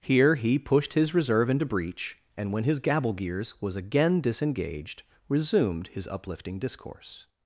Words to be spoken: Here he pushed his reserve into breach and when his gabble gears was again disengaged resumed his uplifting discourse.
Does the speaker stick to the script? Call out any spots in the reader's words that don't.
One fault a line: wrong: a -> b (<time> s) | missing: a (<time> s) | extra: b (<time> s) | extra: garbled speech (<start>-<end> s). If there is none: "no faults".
no faults